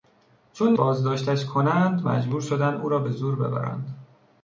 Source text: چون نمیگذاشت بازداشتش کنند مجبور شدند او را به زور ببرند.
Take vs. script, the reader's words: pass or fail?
fail